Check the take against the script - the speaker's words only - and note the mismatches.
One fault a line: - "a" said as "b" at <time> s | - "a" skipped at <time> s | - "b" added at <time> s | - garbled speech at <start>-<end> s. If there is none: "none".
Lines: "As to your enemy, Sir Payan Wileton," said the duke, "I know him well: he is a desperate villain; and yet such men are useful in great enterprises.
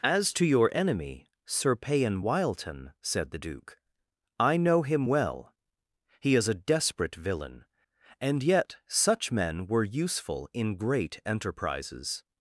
- "are" said as "were" at 9.7 s